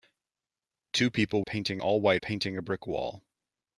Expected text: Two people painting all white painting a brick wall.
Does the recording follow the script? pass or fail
pass